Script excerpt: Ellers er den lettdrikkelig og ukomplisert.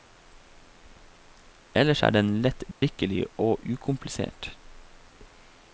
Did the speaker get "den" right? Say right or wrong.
right